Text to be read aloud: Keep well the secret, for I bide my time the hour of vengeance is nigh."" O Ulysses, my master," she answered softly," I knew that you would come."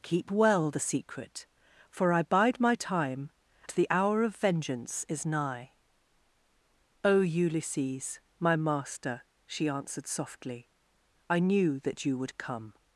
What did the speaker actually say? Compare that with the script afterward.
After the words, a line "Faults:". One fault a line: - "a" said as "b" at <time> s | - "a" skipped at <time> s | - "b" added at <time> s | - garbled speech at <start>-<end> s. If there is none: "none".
Keep well the secret, for I bide my time the hour of vengeance is nigh."" O Ulysses, my master," she answered softly," I knew that you would come."
Faults:
none